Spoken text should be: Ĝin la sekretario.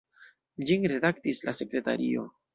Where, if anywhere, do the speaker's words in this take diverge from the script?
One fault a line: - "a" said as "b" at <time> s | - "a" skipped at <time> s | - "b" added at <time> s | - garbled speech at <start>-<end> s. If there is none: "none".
- "redaktis" added at 0.9 s